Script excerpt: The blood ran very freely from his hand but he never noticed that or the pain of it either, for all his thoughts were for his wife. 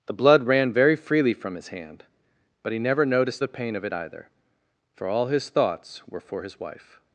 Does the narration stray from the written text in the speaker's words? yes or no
yes